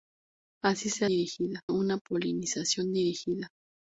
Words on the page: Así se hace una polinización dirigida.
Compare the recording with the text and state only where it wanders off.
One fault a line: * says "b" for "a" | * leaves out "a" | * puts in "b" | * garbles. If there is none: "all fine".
* says "dirigida" for "hace"